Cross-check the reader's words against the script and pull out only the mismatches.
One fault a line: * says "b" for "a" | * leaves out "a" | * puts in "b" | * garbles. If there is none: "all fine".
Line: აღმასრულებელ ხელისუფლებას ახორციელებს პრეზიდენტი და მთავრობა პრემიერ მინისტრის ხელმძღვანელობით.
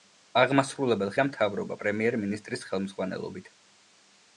* leaves out "ხელისუფლებას ახორციელებს პრეზიდენტი"